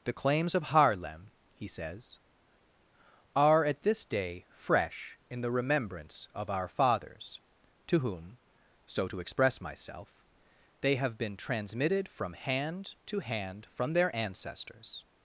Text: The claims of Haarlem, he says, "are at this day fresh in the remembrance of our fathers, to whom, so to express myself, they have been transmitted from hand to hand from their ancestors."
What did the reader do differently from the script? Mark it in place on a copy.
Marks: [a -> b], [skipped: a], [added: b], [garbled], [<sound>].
The claims of Haarlem, he says, "are at this day fresh in the remembrance of our fathers, to whom, so to express myself, they have been transmitted from hand to hand from their ancestors."